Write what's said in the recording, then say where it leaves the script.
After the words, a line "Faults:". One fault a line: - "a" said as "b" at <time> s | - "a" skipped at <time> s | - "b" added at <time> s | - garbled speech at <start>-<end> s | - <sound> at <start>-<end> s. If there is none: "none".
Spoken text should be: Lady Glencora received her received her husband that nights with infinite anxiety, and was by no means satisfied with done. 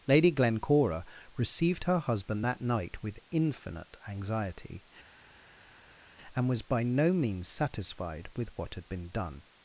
Lady Glencora received her husband that night with infinite anxiety, and was by no means satisfied with what had been done.
Faults:
- "received her" skipped at 2.0 s
- "nights" said as "night" at 2.6 s
- "what had been" added at 8.6 s